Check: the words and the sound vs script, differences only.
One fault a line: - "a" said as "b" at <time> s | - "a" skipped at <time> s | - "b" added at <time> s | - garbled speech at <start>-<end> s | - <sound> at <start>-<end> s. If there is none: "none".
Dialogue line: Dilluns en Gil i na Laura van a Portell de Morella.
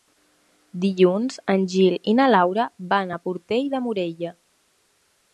none